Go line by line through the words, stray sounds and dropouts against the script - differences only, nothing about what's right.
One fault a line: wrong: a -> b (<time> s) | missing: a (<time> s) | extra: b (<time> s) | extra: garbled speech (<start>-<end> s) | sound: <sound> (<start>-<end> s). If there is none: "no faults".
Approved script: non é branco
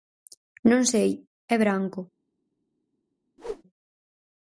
extra: sei (0.9 s)
sound: whoosh (3.4-3.6 s)